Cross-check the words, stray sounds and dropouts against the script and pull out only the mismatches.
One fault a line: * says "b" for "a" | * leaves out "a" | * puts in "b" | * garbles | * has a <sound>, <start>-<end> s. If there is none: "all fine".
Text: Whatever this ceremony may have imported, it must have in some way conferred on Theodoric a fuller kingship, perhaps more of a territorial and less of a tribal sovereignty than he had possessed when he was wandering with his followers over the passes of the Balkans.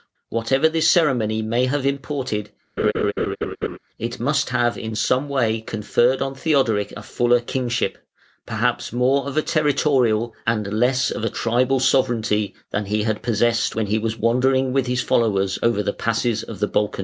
* has a laugh, 2.8-3.8 s